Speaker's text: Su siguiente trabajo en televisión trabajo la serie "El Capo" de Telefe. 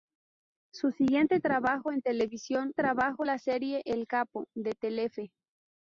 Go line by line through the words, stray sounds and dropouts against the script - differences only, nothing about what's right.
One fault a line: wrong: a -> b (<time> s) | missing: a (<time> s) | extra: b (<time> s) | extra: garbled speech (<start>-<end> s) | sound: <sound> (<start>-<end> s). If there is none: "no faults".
no faults